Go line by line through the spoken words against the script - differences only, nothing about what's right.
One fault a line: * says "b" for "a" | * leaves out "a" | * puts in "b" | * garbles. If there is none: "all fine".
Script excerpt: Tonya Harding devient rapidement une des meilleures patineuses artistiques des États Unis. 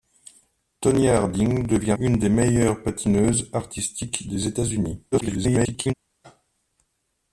* leaves out "rapidement"
* garbles